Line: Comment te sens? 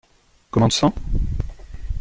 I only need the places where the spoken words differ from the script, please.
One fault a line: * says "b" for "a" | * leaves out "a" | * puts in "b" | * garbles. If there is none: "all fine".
all fine